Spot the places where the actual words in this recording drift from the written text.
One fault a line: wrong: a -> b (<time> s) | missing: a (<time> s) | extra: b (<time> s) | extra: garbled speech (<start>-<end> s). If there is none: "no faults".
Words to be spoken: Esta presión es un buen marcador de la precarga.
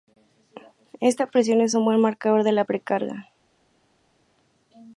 no faults